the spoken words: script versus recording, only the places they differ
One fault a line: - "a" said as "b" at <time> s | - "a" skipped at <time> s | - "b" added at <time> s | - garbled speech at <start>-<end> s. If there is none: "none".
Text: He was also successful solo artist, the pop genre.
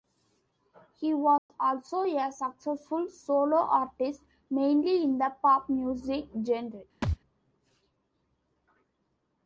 - "a" added at 2.0 s
- "mainly in" added at 4.5 s
- "music" added at 5.7 s